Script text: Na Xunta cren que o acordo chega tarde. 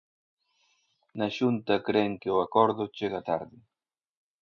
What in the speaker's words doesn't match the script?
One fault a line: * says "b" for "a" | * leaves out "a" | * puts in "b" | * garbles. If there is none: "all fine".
all fine